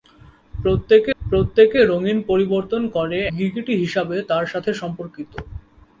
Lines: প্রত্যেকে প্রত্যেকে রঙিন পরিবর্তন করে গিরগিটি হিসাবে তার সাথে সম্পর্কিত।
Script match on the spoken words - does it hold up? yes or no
yes